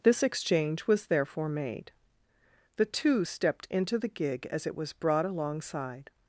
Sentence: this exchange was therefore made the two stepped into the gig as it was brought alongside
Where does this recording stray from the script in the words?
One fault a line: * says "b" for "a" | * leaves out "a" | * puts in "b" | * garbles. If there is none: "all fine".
all fine